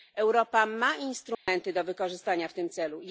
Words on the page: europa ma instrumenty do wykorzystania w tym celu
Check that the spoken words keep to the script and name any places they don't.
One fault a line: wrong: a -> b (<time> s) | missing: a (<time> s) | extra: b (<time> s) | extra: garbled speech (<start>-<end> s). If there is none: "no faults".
no faults